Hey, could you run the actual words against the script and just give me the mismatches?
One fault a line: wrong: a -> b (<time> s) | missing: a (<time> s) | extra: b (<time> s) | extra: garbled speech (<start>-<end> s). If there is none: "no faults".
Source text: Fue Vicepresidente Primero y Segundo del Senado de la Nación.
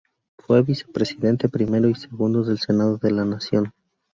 no faults